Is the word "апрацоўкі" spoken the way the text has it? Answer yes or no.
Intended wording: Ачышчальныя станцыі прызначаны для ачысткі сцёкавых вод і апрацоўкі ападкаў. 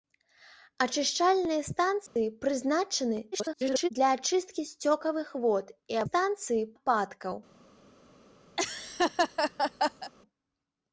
no